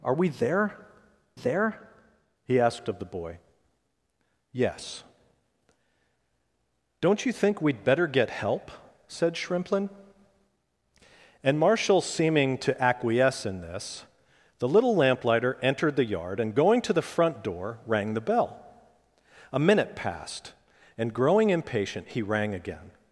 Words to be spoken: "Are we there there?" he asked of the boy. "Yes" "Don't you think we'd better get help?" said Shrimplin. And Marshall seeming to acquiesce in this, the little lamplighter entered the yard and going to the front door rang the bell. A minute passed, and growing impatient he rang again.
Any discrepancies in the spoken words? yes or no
no